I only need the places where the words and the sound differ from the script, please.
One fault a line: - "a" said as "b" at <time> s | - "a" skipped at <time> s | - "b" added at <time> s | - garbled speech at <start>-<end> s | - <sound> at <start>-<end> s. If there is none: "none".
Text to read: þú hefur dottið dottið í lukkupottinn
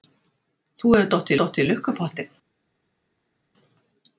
none